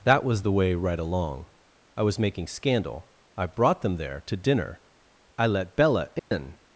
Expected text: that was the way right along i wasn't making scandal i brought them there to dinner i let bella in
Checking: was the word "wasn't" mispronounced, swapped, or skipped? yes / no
yes